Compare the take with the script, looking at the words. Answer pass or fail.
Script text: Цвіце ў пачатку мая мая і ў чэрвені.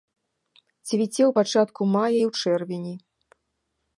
fail